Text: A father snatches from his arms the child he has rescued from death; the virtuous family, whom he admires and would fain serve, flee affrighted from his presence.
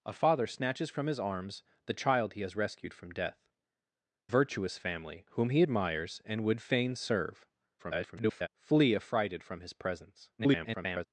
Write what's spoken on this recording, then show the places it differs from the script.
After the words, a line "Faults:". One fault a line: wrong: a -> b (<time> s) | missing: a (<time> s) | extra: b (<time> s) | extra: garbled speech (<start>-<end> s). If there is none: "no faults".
A father snatches from his arms the child he has rescued from death; virtuous family, whom he admires and would fain serve, [garbled] flee affrighted from his presence. [garbled]
Faults:
missing: the (3.5 s)
extra: garbled speech (7.8-8.5 s)
extra: garbled speech (10.4-11.1 s)